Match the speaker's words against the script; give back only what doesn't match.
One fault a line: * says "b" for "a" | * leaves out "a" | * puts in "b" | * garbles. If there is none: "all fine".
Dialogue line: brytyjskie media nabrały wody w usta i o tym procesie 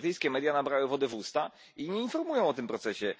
* puts in "nie informują"